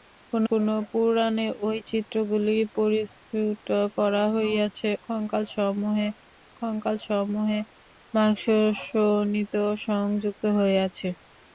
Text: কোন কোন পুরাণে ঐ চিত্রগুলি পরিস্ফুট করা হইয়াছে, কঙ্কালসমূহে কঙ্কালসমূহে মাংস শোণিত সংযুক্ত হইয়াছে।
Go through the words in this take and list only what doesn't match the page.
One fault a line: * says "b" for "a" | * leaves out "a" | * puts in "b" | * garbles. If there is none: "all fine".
all fine